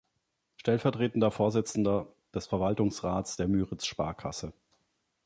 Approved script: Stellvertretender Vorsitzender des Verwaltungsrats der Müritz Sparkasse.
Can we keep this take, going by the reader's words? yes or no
yes